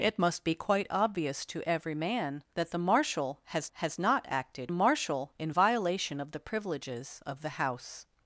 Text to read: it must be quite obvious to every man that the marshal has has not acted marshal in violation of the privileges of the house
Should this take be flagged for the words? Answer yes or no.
no